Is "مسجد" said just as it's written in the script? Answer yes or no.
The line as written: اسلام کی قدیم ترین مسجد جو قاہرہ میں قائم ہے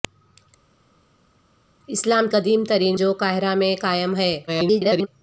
no